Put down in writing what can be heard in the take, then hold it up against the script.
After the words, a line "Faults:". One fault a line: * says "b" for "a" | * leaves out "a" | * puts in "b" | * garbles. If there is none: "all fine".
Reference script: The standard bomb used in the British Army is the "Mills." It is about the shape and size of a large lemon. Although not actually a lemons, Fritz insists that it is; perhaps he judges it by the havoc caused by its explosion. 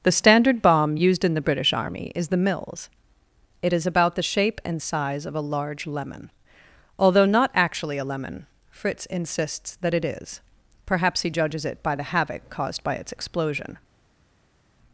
The standard bomb used in the British Army is the "Mills." It is about the shape and size of a large lemon. Although not actually a lemon, Fritz insists that it is; perhaps he judges it by the havoc caused by its explosion.
Faults:
* says "lemon" for "lemons"